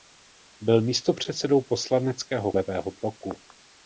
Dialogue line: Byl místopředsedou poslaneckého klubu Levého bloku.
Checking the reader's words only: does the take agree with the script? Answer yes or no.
no